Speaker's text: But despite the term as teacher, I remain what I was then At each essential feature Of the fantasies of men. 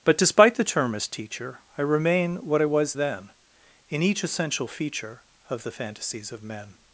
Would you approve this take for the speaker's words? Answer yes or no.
no